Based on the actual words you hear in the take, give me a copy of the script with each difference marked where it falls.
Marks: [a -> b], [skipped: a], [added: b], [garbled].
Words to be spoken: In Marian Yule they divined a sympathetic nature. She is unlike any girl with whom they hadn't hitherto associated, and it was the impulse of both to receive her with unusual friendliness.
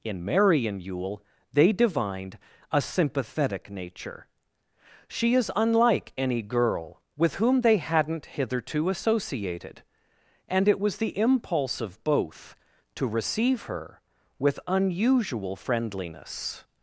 In Marian Yule they divined a sympathetic nature. She is unlike any girl with whom they hadn't hitherto associated, and it was the impulse of both to receive her with unusual friendliness.